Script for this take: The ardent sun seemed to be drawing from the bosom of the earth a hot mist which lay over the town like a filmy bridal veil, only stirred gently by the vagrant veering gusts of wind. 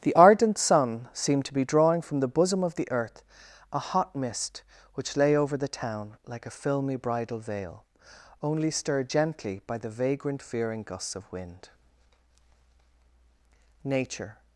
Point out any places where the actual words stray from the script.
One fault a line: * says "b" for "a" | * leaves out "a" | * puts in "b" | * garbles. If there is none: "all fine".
* puts in "Nature"